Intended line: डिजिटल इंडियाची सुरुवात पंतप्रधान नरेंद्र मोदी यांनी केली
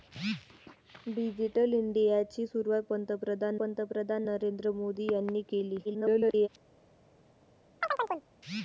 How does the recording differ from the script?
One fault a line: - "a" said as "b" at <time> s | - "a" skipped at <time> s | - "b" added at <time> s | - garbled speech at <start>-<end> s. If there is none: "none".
- "पंतप्रधान" added at 3.6 s
- garbled speech at 5.8-6.5 s